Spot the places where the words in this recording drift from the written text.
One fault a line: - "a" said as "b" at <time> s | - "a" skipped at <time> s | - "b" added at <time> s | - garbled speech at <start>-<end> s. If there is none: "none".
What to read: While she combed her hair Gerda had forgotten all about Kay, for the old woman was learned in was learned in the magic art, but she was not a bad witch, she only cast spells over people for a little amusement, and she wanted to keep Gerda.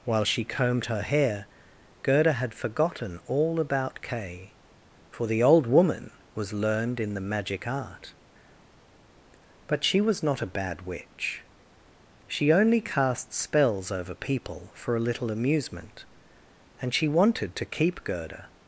- "was learned in" skipped at 7.1 s